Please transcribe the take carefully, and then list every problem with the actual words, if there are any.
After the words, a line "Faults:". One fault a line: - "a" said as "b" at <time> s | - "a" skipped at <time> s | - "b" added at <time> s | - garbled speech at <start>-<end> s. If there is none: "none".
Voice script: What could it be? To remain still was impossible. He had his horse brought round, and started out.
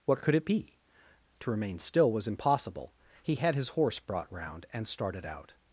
What could it be? To remain still was impossible. He had his horse brought round, and started out.
Faults:
none